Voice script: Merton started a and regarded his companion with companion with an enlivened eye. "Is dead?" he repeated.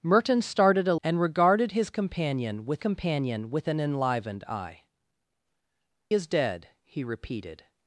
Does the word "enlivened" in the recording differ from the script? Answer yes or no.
no